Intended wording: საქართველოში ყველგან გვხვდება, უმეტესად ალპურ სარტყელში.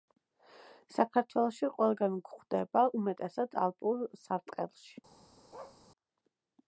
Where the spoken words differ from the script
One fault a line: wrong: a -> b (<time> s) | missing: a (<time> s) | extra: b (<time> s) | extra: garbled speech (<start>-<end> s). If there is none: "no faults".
no faults